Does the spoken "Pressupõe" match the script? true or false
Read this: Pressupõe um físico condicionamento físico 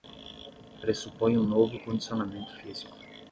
true